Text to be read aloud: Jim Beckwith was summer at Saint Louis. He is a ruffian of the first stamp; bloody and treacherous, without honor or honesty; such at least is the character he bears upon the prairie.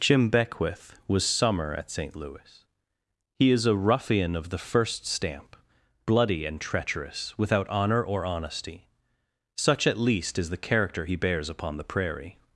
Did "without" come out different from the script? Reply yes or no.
no